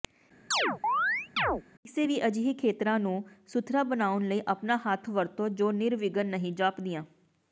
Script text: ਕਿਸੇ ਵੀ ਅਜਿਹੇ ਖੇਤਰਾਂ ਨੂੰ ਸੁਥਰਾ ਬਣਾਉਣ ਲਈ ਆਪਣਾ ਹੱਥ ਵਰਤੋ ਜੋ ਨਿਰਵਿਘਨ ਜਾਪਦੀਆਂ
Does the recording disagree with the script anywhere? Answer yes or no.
yes